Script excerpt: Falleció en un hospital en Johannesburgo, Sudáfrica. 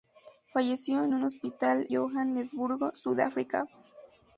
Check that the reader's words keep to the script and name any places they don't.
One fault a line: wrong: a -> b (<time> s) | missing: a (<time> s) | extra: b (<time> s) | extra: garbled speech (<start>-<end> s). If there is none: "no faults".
missing: en (1.9 s)